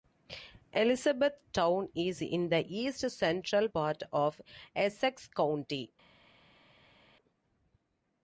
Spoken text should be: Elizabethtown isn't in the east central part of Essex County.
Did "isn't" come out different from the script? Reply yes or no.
yes